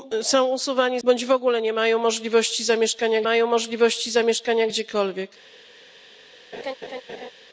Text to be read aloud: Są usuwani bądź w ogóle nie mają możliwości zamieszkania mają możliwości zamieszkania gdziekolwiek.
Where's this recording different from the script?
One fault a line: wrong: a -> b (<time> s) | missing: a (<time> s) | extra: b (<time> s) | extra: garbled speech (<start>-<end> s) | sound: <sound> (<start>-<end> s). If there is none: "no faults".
sound: laugh (6.5-7.3 s)